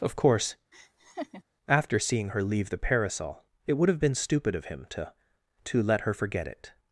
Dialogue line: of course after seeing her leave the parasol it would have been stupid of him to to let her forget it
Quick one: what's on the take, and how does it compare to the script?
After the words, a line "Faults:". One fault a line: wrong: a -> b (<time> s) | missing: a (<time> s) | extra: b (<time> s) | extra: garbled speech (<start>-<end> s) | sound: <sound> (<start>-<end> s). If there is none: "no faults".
of course after seeing her leave the parasol it would have been stupid of him to to let her forget it
Faults:
sound: laugh (0.7-1.4 s)